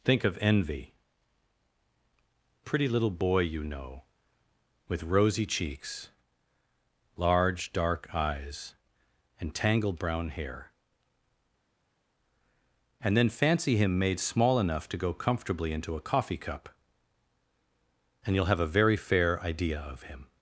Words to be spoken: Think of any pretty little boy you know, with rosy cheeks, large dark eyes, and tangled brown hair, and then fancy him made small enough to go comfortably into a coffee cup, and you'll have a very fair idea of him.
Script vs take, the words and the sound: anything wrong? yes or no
yes